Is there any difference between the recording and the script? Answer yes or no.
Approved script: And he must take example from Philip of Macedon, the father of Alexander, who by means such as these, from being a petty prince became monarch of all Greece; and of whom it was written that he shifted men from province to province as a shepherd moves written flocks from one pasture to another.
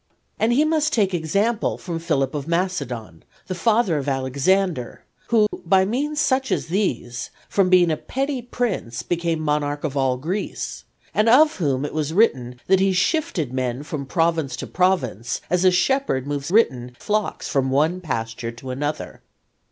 no